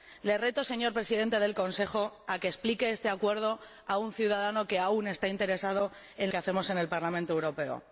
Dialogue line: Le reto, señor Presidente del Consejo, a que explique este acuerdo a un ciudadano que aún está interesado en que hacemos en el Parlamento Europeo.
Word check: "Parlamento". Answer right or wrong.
right